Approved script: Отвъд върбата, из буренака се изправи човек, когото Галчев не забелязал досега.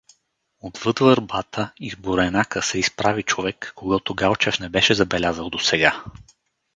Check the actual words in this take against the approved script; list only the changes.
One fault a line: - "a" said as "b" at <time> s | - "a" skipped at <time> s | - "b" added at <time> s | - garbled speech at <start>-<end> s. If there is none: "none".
- "беше" added at 4.7 s